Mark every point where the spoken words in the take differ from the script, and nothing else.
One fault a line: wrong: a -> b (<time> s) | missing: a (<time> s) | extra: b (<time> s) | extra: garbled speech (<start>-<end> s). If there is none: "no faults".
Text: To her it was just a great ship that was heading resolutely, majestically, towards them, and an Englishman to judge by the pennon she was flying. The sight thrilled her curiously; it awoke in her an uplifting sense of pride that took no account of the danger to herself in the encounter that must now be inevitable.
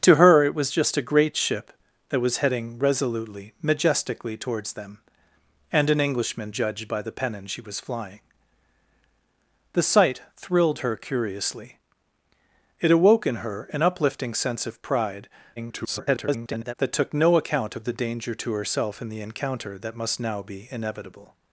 missing: to (6.5 s)
extra: garbled speech (15.6-16.8 s)